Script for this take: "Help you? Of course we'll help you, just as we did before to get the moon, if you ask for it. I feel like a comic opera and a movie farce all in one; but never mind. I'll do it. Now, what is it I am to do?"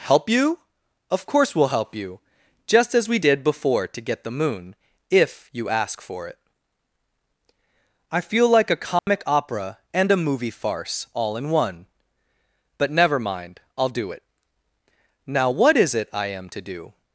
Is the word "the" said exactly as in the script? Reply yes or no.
yes